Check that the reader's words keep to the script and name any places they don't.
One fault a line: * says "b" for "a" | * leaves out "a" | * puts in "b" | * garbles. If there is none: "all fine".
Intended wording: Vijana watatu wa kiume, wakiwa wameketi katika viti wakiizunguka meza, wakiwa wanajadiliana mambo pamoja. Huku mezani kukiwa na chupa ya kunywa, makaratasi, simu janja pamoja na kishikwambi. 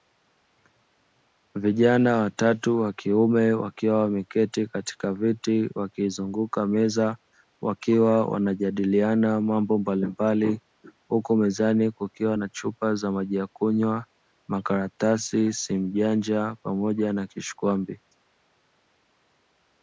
* says "mbalimbali" for "pamoja"
* puts in "za maji"